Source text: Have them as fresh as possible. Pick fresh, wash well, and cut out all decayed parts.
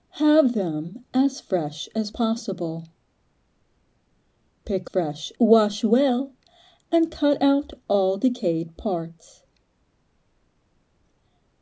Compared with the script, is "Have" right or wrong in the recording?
right